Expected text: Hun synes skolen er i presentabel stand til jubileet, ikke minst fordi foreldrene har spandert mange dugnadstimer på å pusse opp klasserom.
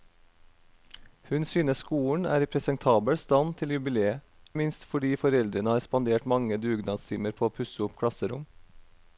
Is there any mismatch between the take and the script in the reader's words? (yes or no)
yes